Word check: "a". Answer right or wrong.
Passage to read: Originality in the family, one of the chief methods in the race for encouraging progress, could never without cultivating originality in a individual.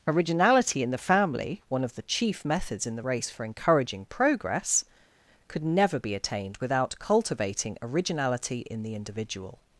wrong